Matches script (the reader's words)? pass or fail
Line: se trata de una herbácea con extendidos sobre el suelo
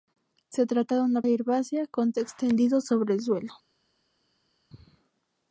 pass